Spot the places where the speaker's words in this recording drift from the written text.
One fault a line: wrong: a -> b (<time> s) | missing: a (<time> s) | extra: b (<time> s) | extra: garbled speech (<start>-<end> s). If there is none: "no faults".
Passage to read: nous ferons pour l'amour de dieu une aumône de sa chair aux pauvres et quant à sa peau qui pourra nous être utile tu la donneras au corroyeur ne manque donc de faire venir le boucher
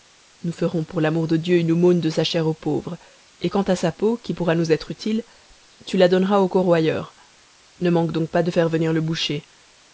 extra: pas (8.3 s)